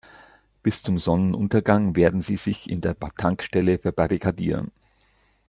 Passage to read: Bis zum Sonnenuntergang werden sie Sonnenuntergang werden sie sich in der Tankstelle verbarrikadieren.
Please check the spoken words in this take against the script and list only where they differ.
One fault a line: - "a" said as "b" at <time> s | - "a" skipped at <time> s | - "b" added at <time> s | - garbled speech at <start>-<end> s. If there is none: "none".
- "Sonnenuntergang werden sie" skipped at 2.4 s